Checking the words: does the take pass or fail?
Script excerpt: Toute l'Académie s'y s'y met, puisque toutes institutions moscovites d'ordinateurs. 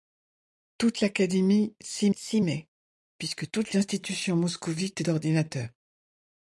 pass